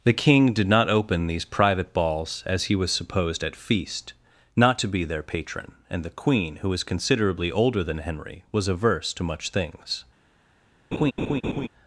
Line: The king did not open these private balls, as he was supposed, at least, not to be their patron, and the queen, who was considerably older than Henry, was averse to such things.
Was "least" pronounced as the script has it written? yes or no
no